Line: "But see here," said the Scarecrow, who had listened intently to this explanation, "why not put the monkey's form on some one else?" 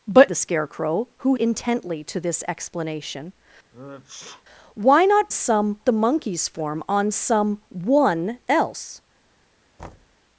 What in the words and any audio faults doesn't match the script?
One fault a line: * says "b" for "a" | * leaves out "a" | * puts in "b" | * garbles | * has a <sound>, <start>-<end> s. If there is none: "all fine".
* leaves out "see here said"
* leaves out "had listened"
* has a sneeze, 3.7-4.4 s
* says "some" for "put"
* has a thud, 9.8-10.2 s